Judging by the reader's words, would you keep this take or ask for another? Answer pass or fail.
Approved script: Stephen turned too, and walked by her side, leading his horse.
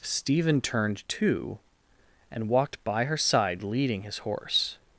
pass